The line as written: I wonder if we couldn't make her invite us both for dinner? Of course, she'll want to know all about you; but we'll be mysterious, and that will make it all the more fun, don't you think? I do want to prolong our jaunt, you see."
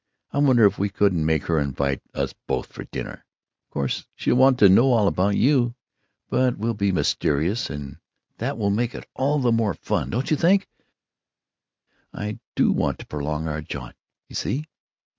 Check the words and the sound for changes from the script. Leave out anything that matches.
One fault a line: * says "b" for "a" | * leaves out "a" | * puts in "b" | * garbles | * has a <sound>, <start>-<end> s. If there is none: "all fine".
all fine